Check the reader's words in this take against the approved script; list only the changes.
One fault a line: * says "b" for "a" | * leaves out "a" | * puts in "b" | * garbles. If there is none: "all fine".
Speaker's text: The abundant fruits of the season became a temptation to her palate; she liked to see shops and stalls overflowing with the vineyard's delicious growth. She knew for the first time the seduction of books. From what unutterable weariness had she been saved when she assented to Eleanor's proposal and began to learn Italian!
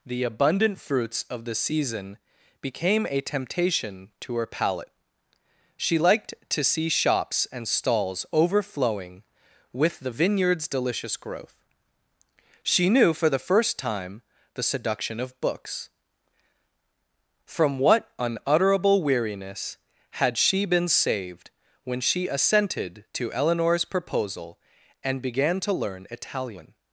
all fine